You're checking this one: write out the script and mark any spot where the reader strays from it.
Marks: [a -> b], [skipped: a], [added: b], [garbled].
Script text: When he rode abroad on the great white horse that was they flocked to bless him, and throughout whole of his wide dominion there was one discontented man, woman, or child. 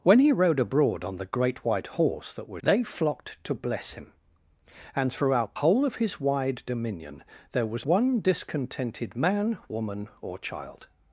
When he rode abroad on the great white horse that was they flocked to bless him, and throughout whole of his wide dominion there was one discontented man, woman, or child.